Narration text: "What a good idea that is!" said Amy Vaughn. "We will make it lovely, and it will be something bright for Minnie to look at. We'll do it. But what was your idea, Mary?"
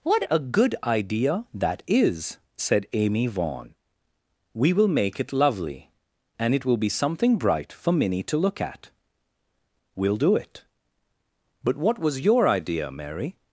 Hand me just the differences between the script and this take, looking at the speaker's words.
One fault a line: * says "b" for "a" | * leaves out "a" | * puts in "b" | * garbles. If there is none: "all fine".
all fine